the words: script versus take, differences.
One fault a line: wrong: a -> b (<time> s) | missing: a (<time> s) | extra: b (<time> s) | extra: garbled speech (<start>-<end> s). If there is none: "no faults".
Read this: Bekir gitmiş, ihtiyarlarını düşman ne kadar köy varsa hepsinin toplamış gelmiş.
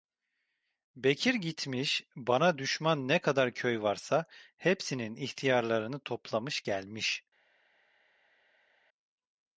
wrong: ihtiyarlarını -> bana (2.1 s)
extra: ihtiyarlarını (5.2 s)